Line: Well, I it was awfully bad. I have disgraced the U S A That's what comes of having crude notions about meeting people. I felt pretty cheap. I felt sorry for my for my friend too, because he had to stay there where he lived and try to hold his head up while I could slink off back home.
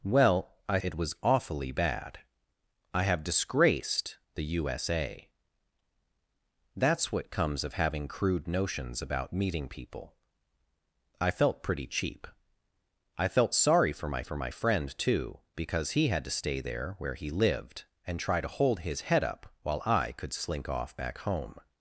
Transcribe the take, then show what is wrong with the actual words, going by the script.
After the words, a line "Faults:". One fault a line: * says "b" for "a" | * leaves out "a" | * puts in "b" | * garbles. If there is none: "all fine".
Well, I it was awfully bad. I have disgraced the U S A That's what comes of having crude notions about meeting people. I felt pretty cheap. I felt sorry for my for my friend too, because he had to stay there where he lived and try to hold his head up while I could slink off back home.
Faults:
all fine